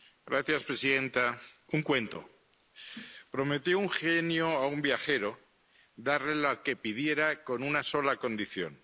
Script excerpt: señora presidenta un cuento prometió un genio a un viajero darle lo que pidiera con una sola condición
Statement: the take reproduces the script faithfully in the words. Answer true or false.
true